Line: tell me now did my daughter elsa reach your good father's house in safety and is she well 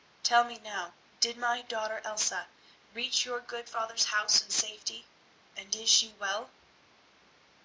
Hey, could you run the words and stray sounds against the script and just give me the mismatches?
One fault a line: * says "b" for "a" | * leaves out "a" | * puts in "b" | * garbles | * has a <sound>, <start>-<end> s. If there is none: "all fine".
all fine